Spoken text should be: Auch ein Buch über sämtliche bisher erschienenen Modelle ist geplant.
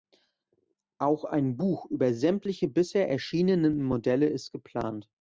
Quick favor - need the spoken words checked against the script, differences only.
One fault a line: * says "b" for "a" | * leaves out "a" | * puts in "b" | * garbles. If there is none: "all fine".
all fine